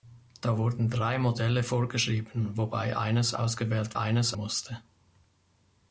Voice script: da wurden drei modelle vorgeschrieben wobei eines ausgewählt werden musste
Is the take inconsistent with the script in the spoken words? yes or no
yes